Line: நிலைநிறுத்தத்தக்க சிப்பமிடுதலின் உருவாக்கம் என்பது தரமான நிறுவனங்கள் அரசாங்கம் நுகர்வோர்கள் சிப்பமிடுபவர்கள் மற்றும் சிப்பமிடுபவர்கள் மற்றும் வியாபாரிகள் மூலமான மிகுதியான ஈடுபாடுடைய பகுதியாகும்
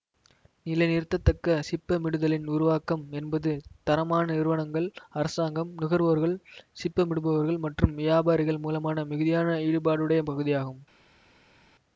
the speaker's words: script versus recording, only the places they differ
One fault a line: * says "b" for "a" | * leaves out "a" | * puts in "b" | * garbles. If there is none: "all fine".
* leaves out "சிப்பமிடுபவர்கள் மற்றும்"